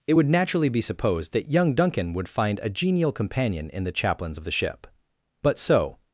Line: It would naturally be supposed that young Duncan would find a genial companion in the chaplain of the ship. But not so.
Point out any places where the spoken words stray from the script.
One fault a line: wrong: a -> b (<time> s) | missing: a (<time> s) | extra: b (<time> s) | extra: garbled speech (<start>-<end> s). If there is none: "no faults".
wrong: chaplain -> chaplains (3.9 s)
missing: not (5.6 s)